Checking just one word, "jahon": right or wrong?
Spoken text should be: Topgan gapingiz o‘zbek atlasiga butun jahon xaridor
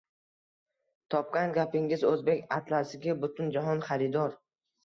right